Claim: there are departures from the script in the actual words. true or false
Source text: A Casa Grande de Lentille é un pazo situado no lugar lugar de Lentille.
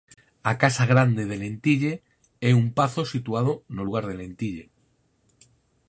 true